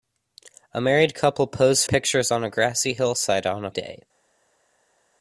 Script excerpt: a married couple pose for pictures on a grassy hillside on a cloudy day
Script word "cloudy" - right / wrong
wrong